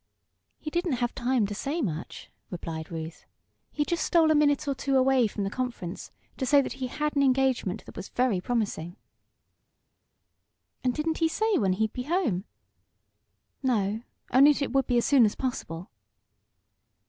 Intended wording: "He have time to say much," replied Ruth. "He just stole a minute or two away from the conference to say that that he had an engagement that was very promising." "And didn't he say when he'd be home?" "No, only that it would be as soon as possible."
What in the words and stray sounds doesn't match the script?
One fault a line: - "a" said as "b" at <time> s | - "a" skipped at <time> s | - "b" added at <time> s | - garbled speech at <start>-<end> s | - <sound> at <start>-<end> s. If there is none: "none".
- "didn't" added at 0.7 s
- "that" skipped at 6.7 s